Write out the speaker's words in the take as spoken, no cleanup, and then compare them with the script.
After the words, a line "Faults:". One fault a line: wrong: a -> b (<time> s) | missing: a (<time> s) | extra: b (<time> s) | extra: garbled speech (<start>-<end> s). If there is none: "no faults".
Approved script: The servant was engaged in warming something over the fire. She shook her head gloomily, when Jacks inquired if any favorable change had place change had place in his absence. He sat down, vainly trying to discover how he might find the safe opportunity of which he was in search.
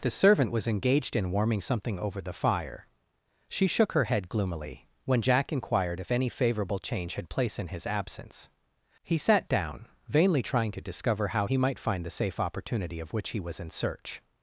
The servant was engaged in warming something over the fire. She shook her head gloomily, when Jack inquired if any favorable change had place in his absence. He sat down, vainly trying to discover how he might find the safe opportunity of which he was in search.
Faults:
wrong: Jacks -> Jack (5.2 s)
missing: change had place (7.6 s)